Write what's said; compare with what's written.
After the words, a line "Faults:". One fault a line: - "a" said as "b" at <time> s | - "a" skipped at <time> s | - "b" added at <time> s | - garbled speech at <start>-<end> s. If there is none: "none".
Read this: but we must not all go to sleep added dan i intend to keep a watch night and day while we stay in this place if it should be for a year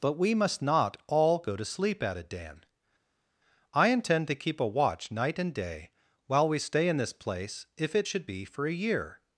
but we must not all go to sleep added dan i intend to keep a watch night and day while we stay in this place if it should be for a year
Faults:
none